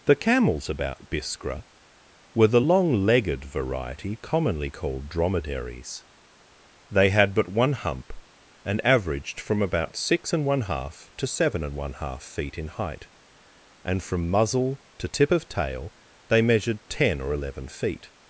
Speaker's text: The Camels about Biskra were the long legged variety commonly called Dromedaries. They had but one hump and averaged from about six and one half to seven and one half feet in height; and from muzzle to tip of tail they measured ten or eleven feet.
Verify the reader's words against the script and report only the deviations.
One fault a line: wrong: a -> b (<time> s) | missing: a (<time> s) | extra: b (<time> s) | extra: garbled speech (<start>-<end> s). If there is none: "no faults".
no faults